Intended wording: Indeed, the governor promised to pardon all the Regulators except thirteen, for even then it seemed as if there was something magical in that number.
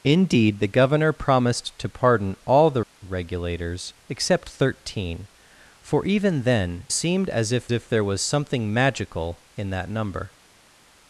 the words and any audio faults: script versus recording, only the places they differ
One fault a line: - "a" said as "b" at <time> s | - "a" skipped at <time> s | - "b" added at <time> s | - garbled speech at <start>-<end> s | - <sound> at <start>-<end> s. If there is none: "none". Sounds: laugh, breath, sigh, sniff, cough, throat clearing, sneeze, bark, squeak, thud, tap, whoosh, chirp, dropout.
- "it" skipped at 6.8 s
- "if" added at 7.7 s